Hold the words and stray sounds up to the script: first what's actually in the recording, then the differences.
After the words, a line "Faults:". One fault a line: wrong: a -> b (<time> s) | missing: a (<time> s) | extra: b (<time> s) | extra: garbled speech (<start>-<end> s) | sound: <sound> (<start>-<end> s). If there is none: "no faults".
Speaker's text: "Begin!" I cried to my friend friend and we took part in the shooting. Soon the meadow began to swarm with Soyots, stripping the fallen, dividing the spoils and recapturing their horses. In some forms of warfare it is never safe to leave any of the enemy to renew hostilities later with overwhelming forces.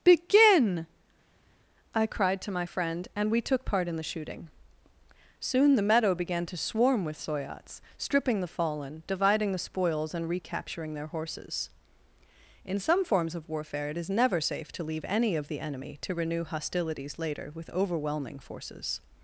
"Begin!" I cried to my friend and we took part in the shooting. Soon the meadow began to swarm with Soyots, stripping the fallen, dividing the spoils and recapturing their horses. In some forms of warfare it is never safe to leave any of the enemy to renew hostilities later with overwhelming forces.
Faults:
missing: friend (3.1 s)